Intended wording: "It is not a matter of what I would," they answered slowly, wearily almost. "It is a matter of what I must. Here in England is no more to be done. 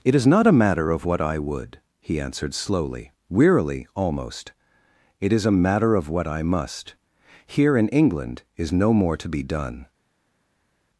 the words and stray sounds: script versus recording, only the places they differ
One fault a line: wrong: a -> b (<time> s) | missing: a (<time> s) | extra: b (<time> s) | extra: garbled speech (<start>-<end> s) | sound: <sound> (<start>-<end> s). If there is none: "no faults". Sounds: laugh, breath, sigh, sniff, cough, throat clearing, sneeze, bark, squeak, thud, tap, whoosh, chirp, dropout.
wrong: they -> he (2.0 s)